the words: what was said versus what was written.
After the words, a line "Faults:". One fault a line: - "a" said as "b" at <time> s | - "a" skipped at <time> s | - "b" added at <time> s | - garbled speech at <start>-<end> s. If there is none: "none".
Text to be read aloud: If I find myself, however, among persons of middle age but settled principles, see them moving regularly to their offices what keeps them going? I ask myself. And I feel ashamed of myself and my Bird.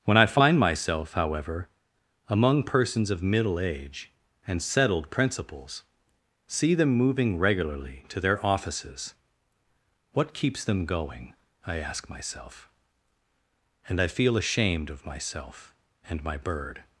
When I find myself, however, among persons of middle age and settled principles, see them moving regularly to their offices what keeps them going? I ask myself. And I feel ashamed of myself and my Bird.
Faults:
- "If" said as "When" at 0.0 s
- "but" said as "and" at 4.5 s